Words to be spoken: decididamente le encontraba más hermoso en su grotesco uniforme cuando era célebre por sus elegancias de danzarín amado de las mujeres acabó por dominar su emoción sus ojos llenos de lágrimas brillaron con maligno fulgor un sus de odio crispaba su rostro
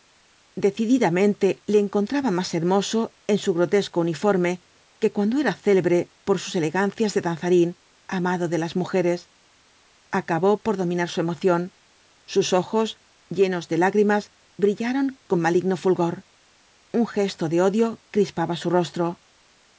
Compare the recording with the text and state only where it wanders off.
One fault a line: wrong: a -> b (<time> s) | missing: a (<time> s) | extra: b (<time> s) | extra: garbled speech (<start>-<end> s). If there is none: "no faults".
extra: que (5.0 s)
wrong: sus -> gesto (17.1 s)